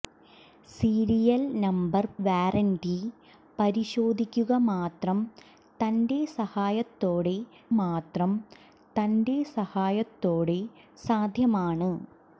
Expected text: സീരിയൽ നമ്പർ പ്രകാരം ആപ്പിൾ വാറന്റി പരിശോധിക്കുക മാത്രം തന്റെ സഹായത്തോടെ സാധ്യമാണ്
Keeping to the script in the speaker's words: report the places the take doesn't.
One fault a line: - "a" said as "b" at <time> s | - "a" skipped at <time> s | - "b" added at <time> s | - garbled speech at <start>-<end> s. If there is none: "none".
- "പ്രകാരം ആപ്പിൾ വാറന്റി പരിശോധിക്കുക" said as "വാറന്റി പരിശോധിക്കുക മാത്രം തന്റെ സഹായത്തോടെ" at 2.3 s